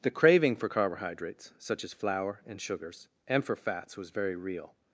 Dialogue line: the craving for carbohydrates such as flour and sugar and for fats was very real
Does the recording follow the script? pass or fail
fail